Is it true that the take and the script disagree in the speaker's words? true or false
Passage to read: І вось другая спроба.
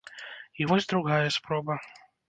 false